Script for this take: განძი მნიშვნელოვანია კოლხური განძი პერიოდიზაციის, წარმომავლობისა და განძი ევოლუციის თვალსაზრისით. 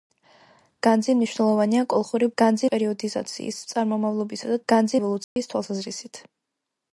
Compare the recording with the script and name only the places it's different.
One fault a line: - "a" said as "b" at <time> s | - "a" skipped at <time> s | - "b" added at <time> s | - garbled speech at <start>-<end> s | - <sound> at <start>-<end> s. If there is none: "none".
- dropout at 5.2-5.4 s